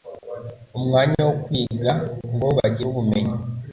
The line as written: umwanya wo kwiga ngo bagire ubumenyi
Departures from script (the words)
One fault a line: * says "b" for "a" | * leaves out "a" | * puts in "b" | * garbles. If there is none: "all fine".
all fine